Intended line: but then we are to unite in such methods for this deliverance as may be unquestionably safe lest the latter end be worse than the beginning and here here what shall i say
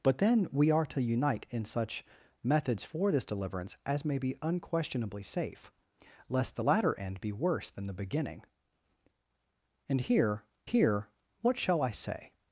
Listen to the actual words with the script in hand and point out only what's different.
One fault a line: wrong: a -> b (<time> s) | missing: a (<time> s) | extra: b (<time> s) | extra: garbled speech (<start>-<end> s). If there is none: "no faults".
no faults